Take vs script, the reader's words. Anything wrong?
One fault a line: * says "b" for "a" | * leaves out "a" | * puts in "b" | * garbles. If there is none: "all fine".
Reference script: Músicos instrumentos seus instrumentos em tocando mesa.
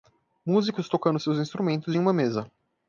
* says "tocando" for "instrumentos"
* says "uma" for "tocando"